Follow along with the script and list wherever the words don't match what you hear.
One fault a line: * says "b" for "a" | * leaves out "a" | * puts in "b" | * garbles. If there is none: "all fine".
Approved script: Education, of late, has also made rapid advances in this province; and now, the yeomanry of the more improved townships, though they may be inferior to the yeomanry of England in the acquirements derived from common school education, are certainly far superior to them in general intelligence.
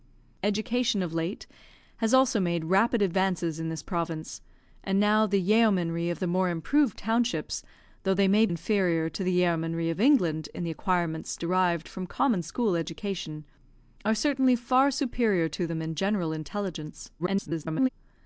* leaves out "be"
* garbles